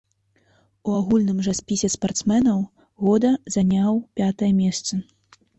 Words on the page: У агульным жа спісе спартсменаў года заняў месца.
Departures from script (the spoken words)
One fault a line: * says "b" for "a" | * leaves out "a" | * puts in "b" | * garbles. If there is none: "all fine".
* puts in "пятае"